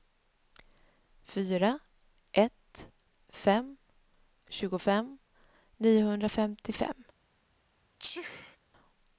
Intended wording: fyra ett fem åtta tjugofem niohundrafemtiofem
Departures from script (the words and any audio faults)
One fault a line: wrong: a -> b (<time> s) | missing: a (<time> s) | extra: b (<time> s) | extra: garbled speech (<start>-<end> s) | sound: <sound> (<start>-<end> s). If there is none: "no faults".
missing: åtta (3.8 s)
sound: sneeze (8.0-8.6 s)